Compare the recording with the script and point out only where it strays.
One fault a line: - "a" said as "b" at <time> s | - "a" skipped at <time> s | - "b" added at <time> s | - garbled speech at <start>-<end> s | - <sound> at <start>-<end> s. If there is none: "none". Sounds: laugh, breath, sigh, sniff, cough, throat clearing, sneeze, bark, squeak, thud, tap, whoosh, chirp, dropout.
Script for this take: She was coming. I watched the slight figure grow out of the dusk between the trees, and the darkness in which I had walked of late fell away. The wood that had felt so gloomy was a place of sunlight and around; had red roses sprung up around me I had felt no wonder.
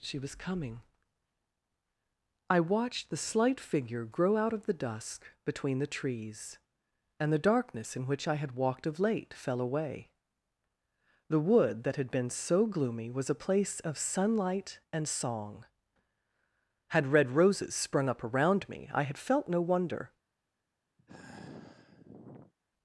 - "felt" said as "been" at 12.1 s
- "around" said as "song" at 15.1 s
- sigh at 21.0-22.5 s